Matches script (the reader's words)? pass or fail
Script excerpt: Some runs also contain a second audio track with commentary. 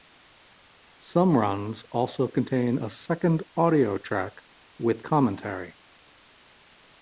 pass